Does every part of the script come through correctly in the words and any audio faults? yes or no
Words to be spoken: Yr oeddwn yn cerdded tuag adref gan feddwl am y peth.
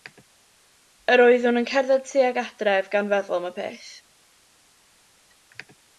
yes